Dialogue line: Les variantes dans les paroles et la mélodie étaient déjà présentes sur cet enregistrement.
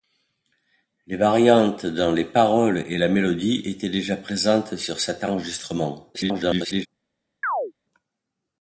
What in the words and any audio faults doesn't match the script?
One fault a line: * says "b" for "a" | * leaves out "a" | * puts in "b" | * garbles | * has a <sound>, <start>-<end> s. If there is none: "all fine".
* garbles
* has a chirp, 7.4-7.7 s